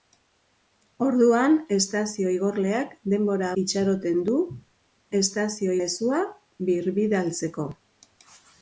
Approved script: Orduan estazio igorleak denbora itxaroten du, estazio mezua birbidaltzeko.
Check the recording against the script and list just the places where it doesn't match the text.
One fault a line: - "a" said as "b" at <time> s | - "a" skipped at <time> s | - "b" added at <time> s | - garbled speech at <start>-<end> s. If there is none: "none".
none